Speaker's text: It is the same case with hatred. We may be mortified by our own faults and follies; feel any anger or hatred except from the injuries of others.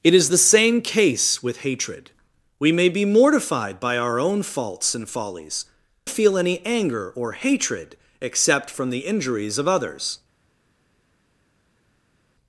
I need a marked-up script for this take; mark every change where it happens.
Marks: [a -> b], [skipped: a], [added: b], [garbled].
It is the same case with hatred. We may be mortified by our own faults and follies; feel any anger or hatred except from the injuries of others.